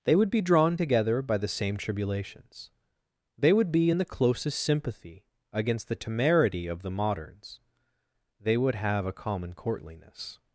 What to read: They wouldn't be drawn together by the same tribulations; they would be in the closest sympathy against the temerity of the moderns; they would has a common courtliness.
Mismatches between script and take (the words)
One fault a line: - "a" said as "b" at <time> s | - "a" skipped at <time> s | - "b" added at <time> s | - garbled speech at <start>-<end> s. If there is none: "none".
- "wouldn't" said as "would" at 0.1 s
- "has" said as "have" at 8.8 s